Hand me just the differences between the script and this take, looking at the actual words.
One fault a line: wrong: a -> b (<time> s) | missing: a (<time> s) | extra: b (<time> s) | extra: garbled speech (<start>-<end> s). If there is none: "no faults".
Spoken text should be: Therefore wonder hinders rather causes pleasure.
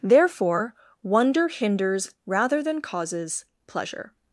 extra: than (2.6 s)